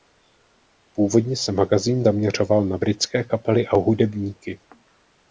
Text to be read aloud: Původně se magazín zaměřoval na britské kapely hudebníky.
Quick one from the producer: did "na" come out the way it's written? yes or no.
yes